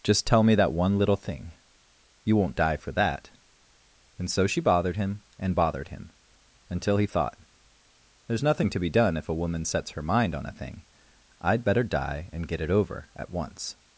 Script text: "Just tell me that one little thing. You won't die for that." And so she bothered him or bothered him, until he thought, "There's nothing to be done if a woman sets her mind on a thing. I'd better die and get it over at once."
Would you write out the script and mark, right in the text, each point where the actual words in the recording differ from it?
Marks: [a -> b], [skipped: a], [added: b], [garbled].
"Just tell me that one little thing. You won't die for that." And so she bothered him [or -> and] bothered him, until he thought, "There's nothing to be done if a woman sets her mind on a thing. I'd better die and get it over at once."